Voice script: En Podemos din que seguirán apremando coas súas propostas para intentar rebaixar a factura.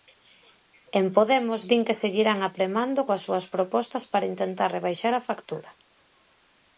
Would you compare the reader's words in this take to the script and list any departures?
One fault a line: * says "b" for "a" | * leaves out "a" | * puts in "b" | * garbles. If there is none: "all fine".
all fine